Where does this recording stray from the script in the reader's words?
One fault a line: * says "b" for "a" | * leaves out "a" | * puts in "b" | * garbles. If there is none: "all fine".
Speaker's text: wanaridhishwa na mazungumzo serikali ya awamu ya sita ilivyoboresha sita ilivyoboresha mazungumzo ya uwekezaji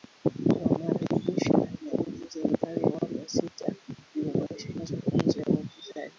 * says "jinsi" for "mazungumzo"
* leaves out "sita ilivyoboresha"